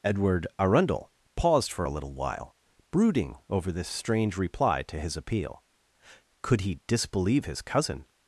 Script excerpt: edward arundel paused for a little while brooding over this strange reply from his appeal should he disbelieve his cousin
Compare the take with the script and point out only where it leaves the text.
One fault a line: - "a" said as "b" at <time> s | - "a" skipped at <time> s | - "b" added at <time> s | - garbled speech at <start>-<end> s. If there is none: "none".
- "from" said as "to" at 4.8 s
- "should" said as "could" at 6.4 s